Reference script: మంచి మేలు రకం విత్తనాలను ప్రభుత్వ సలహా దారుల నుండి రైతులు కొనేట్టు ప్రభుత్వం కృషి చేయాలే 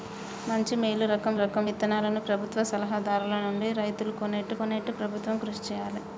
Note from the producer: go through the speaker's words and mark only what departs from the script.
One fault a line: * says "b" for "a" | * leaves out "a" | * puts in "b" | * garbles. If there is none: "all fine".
* puts in "రకం"
* puts in "కొనేట్టు"